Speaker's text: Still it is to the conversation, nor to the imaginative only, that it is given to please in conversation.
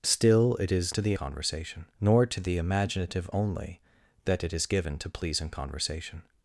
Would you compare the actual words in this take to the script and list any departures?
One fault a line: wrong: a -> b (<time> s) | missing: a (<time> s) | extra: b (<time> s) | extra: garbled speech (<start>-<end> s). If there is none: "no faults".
no faults